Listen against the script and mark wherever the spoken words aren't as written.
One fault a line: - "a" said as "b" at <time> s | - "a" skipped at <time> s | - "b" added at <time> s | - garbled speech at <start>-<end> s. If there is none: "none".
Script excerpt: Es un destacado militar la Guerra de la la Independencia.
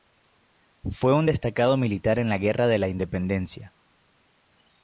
- "Es" said as "Fue" at 0.9 s
- "en" added at 2.2 s
- "la" skipped at 2.9 s